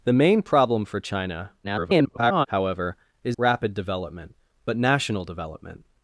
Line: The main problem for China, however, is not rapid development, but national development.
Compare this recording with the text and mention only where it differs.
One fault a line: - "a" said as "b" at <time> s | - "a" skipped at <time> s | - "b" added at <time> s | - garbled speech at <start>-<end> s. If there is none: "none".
- garbled speech at 1.6-2.5 s
- "not" skipped at 3.4 s